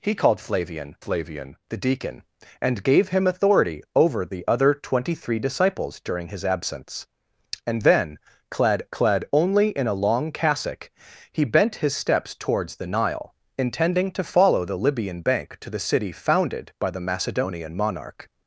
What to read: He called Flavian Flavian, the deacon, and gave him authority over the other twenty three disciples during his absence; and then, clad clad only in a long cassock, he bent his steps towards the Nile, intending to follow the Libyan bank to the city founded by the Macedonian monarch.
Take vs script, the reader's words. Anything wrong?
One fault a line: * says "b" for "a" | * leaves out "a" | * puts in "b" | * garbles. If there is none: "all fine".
all fine